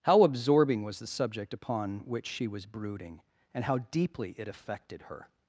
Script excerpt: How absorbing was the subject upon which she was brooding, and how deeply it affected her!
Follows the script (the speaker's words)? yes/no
yes